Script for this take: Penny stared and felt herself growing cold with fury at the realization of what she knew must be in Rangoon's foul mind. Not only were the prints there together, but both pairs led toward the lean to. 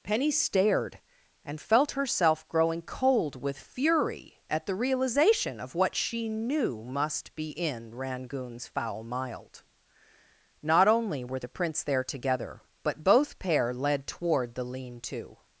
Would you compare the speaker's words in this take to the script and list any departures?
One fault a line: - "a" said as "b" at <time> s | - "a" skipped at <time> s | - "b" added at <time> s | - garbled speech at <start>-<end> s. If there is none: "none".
- "mind" said as "mild" at 9.0 s
- "pairs" said as "pair" at 13.4 s